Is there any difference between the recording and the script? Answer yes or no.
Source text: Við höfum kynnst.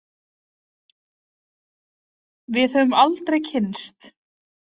yes